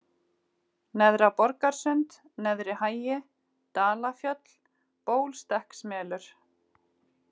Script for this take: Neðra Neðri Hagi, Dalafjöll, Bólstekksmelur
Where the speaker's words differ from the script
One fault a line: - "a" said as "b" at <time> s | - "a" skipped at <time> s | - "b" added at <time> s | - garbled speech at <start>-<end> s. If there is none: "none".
- "Borgarsund" added at 1.4 s